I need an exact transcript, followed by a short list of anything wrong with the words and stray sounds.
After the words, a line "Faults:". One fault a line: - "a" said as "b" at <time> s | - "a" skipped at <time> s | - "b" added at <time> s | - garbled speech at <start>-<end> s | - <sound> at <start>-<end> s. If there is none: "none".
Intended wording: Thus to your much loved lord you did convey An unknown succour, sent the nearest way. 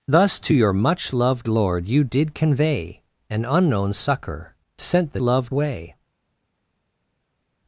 Thus to your much loved lord you did convey An unknown succour, sent the loved way.
Faults:
- "nearest" said as "loved" at 5.2 s